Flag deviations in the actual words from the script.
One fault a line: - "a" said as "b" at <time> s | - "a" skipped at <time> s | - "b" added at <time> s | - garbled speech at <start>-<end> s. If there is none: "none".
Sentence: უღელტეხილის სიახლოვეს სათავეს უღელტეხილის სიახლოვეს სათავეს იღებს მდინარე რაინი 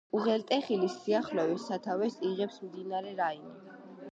- "უღელტეხილის სიახლოვეს სათავეს" skipped at 2.2 s